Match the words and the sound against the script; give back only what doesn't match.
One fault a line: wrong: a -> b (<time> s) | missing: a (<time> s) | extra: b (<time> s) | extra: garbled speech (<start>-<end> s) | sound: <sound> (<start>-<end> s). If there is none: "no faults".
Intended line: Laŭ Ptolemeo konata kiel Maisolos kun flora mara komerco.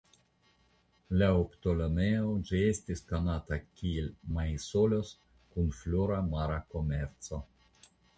extra: ĝi estis (2.5 s)